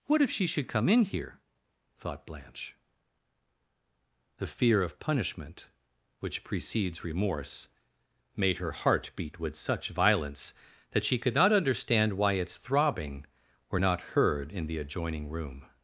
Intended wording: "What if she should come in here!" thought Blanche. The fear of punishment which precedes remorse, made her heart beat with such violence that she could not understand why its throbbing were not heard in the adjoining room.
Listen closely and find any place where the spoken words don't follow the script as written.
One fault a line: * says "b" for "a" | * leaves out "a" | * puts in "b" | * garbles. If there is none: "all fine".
all fine